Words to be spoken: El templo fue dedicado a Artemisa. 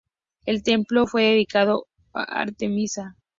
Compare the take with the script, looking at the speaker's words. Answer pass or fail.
pass